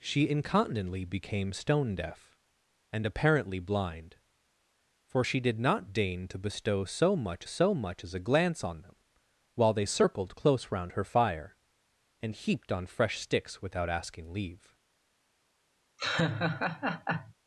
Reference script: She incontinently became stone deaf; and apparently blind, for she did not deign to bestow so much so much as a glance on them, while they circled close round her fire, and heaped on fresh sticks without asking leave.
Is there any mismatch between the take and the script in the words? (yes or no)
no